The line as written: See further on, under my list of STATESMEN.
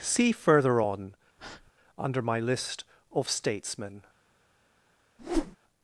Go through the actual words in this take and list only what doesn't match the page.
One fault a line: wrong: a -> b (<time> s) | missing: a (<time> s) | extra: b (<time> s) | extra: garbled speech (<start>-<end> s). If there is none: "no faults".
no faults